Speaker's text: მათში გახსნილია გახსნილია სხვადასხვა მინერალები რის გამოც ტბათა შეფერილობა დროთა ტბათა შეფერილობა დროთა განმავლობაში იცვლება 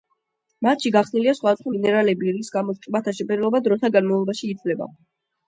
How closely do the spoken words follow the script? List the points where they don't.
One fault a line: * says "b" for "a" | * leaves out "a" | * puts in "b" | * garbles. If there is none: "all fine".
* leaves out "გახსნილია"
* leaves out "ტბათა შეფერილობა დროთა"